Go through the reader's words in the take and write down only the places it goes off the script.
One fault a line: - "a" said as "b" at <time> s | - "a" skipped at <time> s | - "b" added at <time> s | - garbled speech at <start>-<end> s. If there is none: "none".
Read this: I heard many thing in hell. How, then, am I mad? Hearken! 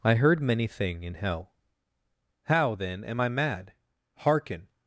none